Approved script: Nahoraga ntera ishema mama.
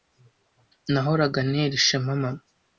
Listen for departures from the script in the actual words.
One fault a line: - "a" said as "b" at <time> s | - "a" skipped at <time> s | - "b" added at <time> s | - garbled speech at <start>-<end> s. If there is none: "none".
none